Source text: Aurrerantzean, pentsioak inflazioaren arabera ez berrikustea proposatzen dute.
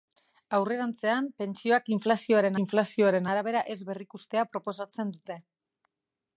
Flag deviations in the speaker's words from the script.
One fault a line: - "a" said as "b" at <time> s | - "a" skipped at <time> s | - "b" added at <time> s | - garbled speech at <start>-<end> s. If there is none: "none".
- "inflazioaren" added at 2.6 s